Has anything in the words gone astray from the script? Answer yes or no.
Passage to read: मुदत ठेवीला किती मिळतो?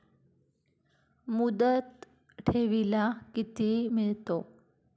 no